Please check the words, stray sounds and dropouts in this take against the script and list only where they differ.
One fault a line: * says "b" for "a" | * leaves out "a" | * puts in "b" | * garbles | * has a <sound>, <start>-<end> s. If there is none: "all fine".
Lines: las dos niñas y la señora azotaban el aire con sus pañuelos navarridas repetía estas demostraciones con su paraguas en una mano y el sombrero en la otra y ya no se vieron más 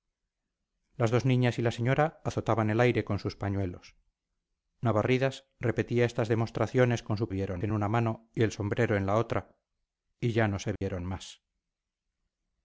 * says "vieron" for "paraguas"
* has a dropout, 10.8-10.8 s